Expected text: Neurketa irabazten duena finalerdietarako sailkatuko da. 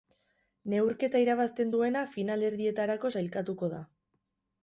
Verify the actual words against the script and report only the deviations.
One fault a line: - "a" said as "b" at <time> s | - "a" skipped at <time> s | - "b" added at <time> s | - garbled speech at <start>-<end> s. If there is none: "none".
none